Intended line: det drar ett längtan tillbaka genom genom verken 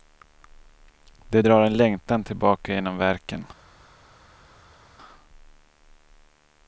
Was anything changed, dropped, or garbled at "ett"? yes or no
yes